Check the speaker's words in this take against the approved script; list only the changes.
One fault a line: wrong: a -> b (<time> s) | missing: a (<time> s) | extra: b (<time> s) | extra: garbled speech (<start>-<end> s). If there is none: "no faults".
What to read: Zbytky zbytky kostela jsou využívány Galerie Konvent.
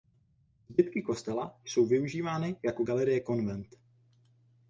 missing: zbytky (1.0 s)
extra: jako (2.6 s)